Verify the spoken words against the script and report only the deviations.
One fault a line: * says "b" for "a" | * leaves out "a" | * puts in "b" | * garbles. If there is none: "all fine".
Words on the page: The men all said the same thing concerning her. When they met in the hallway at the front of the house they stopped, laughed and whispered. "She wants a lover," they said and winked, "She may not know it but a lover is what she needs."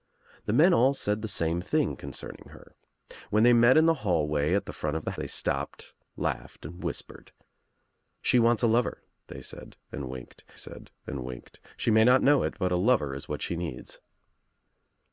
* leaves out "house"
* puts in "said and winked"